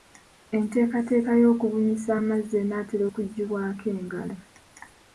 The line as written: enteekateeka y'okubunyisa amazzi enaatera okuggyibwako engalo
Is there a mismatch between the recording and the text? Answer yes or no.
no